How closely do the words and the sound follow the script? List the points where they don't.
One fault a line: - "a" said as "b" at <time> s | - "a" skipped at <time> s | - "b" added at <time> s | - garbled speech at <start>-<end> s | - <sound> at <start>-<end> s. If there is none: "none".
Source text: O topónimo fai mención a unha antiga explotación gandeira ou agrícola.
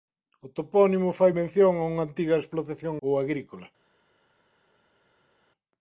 - "gandeira" skipped at 2.9 s